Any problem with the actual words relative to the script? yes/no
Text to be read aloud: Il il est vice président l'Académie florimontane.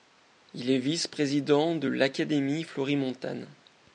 yes